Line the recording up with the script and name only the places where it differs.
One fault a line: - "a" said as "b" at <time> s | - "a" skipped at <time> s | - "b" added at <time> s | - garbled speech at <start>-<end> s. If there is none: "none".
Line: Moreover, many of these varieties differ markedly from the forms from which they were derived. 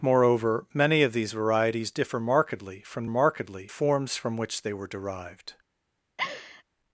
- "the" said as "markedly" at 3.1 s